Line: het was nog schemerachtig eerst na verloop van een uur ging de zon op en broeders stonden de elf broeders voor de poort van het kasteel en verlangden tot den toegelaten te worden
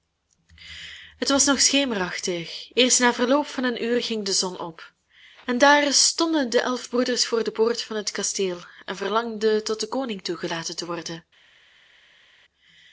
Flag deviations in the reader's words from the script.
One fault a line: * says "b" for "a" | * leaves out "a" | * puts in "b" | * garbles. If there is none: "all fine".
* says "daar" for "broeders"
* puts in "koning"